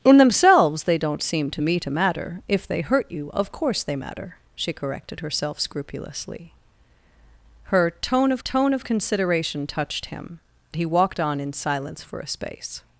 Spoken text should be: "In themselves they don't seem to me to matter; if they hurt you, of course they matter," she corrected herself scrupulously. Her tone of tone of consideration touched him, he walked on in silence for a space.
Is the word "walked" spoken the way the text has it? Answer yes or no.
yes